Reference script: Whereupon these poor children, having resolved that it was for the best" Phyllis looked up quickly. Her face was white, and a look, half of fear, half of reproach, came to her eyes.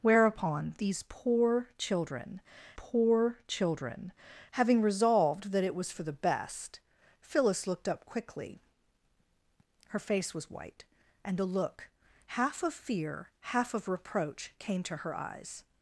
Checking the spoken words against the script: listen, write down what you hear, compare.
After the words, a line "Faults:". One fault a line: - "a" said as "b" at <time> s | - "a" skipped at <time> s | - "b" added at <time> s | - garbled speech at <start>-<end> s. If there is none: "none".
Whereupon these poor children poor children, having resolved that it was for the best" Phyllis looked up quickly. Her face was white, and a look, half of fear, half of reproach, came to her eyes.
Faults:
- "poor children" added at 2.7 s